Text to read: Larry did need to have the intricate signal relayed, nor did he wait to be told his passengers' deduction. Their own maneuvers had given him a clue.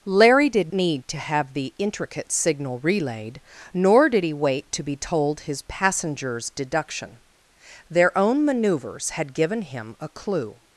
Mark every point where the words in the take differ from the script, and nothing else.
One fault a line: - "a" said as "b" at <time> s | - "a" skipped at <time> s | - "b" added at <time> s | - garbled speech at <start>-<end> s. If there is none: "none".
none